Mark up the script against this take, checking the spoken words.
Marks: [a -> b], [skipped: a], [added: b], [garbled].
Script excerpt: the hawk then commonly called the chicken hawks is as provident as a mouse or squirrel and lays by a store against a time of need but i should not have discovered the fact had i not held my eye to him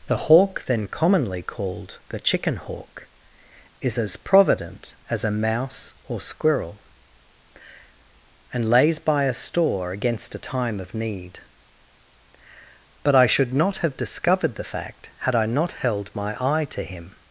the hawk then commonly called the chicken [hawks -> hawk] is as provident as a mouse or squirrel and lays by a store against a time of need but i should not have discovered the fact had i not held my eye to him